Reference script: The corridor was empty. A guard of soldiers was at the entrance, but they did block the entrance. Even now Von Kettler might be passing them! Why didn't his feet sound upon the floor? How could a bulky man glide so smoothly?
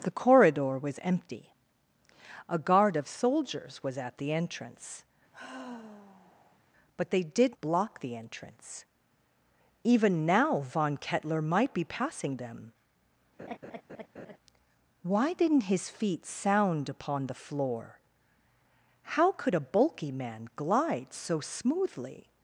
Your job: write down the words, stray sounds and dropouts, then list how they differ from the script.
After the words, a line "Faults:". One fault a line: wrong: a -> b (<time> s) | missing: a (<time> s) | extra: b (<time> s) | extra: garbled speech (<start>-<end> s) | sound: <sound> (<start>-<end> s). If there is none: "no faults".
The corridor was empty. A guard of soldiers was at the entrance, but they did block the entrance. Even now Von Kettler might be passing them! Why didn't his feet sound upon the floor? How could a bulky man glide so smoothly?
Faults:
sound: sigh (5.3-6.6 s)
sound: laugh (13.4-14.4 s)